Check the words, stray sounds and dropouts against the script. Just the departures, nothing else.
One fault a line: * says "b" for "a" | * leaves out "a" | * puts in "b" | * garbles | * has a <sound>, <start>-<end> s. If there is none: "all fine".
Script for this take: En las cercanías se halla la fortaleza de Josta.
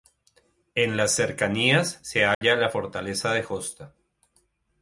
* has a dropout, 2.3-2.4 s